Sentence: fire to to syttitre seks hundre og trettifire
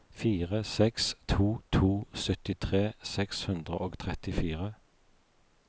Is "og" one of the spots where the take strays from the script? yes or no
no